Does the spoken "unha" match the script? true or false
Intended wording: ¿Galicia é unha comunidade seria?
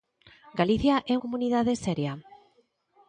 false